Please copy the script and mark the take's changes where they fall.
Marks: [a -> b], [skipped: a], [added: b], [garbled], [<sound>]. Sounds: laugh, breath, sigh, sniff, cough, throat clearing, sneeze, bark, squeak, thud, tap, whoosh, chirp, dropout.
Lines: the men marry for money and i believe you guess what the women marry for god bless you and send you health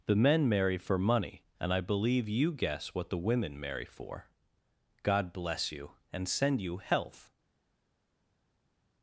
the men marry for money and i believe you guess what the women marry for god bless you and send you health